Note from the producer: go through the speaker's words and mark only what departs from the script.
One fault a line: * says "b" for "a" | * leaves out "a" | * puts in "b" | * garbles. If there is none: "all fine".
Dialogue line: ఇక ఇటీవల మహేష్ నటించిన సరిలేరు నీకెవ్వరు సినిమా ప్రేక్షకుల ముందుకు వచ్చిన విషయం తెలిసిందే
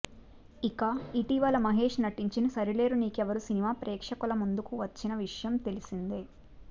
all fine